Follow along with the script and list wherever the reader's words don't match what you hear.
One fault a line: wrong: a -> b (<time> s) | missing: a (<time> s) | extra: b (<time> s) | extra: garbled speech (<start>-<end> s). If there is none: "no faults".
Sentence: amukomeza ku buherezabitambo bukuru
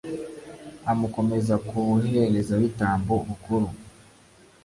no faults